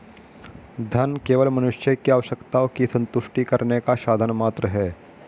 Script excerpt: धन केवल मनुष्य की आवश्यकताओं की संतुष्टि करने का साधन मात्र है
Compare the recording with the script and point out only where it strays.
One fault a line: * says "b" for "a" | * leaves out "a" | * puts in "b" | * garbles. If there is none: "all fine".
all fine